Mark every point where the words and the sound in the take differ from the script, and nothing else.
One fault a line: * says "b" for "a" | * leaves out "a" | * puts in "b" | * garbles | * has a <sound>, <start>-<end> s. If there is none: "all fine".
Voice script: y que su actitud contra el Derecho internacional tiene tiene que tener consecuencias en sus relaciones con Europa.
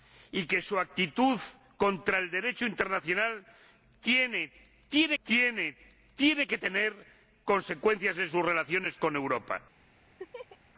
* has a laugh, 10.2-10.6 s